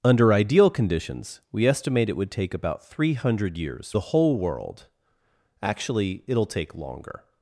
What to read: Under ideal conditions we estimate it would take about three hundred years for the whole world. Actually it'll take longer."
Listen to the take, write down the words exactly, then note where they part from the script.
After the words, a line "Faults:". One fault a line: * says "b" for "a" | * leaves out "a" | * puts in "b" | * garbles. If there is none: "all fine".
Under ideal conditions we estimate it would take about three hundred years the whole world. Actually it'll take longer."
Faults:
* leaves out "for"